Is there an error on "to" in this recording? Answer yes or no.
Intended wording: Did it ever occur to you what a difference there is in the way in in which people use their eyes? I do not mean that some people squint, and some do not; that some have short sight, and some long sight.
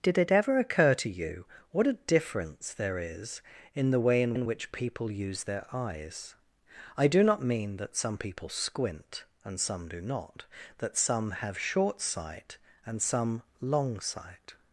no